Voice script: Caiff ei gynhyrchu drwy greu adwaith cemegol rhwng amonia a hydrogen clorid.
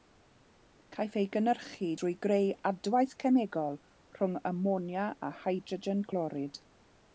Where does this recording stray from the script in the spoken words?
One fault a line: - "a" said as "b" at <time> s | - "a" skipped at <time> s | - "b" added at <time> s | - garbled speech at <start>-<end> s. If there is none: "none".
none